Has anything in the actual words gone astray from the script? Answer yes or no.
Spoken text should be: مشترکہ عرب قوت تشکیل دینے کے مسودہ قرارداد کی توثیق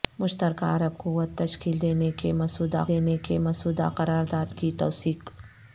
yes